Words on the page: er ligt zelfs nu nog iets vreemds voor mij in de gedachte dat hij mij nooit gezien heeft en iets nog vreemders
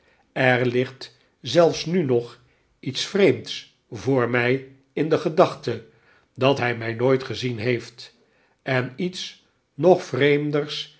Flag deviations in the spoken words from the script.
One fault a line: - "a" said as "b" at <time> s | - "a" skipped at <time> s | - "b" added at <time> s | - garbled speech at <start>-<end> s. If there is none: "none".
none